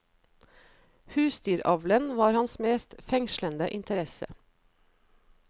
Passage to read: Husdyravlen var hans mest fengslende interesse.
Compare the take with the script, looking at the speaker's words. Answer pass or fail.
pass